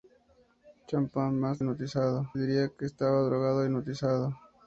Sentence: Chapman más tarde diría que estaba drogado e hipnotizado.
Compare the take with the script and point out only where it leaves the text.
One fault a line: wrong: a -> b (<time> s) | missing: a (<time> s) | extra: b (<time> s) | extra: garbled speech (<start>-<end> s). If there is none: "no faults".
wrong: tarde -> hipnotizado (1.6 s)